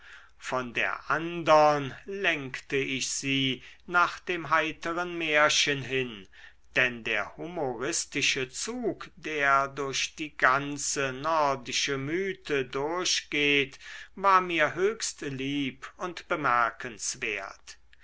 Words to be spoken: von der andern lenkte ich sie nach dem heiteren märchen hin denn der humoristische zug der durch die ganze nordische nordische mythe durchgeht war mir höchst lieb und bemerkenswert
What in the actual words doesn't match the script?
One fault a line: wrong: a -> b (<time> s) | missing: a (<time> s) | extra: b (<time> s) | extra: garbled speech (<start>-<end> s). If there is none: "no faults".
missing: nordische (12.0 s)